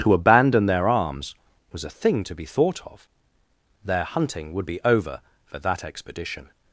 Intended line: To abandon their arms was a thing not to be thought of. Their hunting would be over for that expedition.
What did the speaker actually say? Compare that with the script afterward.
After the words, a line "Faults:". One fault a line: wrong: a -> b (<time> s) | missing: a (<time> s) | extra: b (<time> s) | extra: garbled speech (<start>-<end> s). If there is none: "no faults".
To abandon their arms was a thing to be thought of. Their hunting would be over for that expedition.
Faults:
missing: not (2.2 s)